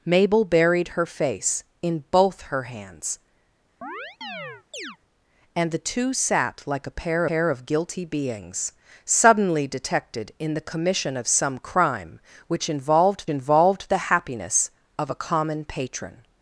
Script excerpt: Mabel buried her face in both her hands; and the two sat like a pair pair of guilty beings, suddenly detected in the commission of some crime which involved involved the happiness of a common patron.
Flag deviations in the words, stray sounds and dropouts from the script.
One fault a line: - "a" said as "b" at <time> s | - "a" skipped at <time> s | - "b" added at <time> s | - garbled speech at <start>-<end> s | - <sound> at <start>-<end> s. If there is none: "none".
- chirp at 3.8-5.0 s